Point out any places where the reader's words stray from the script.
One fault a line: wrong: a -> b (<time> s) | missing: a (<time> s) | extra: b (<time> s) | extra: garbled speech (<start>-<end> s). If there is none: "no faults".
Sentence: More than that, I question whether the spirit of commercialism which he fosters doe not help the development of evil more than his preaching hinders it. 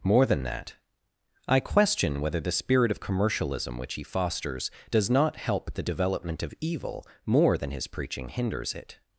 wrong: doe -> does (4.9 s)